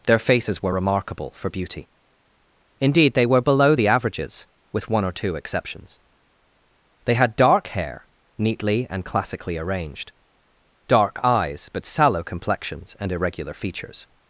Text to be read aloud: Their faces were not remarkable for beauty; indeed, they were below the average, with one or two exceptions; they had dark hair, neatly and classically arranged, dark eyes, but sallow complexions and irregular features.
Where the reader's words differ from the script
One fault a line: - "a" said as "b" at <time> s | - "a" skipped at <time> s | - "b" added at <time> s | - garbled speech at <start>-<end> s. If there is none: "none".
- "not" skipped at 0.7 s
- "average" said as "averages" at 3.9 s